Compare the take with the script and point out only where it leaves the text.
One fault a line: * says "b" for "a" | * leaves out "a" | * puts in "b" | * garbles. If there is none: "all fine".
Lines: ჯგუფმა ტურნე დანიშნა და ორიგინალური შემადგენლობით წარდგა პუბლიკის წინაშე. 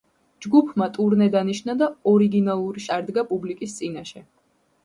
* leaves out "შემადგენლობით"